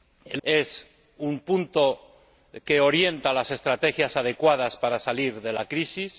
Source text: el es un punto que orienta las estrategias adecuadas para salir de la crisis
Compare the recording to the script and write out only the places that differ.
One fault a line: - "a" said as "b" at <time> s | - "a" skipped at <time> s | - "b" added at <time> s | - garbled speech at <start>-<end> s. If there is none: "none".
none